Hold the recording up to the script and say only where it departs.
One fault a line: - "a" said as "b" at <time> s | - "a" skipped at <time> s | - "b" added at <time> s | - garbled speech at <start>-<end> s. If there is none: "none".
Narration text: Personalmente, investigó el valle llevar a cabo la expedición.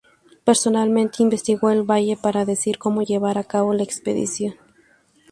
- "para decidir cómo" added at 2.2 s